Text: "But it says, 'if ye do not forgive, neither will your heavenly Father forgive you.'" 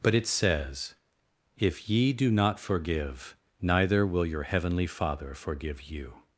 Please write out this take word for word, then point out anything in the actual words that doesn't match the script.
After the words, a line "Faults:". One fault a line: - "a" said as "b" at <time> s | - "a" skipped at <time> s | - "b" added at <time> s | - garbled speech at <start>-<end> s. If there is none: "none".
"But it says, 'if ye do not forgive, neither will your heavenly Father forgive you.'"
Faults:
none